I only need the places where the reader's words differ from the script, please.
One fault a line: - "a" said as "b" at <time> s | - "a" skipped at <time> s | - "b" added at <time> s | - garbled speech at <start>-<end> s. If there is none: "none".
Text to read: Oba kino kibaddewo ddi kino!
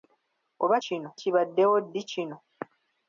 none